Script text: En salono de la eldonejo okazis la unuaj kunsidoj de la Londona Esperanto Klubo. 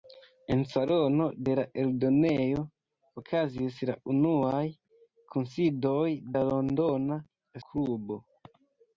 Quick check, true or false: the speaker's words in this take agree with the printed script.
false